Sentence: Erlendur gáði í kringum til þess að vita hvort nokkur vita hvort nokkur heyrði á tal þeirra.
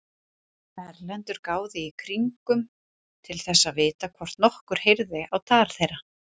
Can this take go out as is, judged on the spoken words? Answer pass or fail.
fail